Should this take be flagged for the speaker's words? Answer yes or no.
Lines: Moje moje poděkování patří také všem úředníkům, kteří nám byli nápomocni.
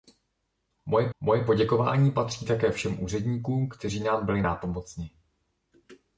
no